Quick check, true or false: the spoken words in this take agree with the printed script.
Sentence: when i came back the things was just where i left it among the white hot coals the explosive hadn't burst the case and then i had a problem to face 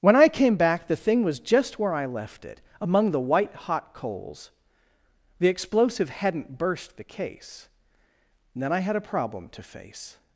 false